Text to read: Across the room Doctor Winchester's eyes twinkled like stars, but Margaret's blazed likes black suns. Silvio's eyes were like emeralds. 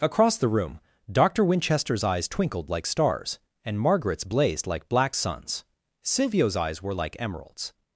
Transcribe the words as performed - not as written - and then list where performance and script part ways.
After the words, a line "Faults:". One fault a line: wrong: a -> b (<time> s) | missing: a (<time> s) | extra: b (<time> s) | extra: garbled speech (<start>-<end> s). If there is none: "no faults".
Across the room Doctor Winchester's eyes twinkled like stars, and Margaret's blazed like black suns. Silvio's eyes were like emeralds.
Faults:
wrong: but -> and (3.7 s)
wrong: likes -> like (4.6 s)